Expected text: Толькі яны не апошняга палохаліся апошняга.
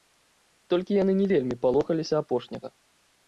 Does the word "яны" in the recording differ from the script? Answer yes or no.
no